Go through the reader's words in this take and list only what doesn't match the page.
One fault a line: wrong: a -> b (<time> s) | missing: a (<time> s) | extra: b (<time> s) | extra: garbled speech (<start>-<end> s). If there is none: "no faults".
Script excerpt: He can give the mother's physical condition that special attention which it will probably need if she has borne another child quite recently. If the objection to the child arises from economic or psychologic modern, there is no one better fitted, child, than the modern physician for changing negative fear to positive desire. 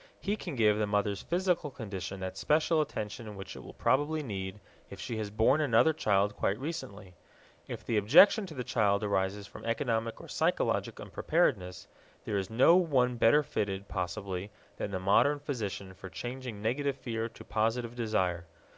wrong: modern -> unpreparedness (11.0 s)
wrong: child -> possibly (13.9 s)